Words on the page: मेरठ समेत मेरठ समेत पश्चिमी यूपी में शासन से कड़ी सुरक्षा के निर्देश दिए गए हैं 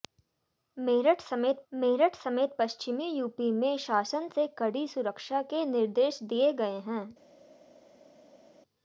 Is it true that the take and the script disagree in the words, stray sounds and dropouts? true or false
false